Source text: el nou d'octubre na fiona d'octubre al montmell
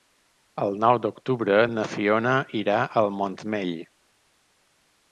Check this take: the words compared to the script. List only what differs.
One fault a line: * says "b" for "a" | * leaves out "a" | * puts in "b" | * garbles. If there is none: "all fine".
* says "irà" for "d'octubre"